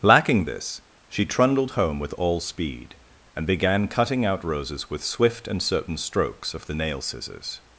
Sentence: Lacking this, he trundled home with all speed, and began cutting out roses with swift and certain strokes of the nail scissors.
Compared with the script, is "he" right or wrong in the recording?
wrong